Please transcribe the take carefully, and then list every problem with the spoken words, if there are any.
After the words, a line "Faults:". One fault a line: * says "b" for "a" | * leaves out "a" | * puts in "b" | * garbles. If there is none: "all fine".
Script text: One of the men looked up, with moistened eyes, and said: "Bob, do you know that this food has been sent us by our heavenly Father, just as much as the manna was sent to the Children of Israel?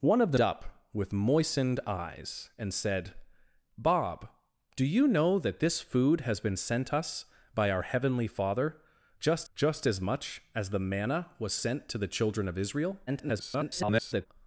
One of the up, with moistened eyes, and said: "Bob, do you know that this food has been sent us by our heavenly Father, just just as much as the manna was sent to the Children of Israel? [garbled]
Faults:
* leaves out "men looked"
* puts in "just"
* garbles